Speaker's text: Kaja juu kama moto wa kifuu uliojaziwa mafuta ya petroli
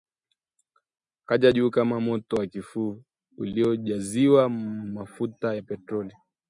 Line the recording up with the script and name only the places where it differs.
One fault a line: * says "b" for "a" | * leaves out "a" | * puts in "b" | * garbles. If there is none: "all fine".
all fine